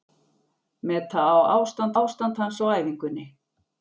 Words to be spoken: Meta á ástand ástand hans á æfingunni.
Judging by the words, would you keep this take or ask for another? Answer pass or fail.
pass